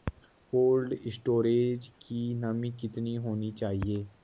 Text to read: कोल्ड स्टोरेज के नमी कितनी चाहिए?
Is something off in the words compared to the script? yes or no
yes